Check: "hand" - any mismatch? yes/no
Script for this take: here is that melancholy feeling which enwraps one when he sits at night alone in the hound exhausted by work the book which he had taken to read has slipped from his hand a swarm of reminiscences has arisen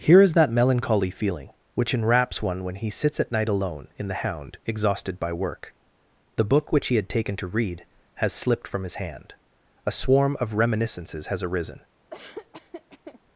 no